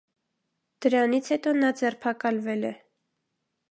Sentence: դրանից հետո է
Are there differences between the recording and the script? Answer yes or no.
yes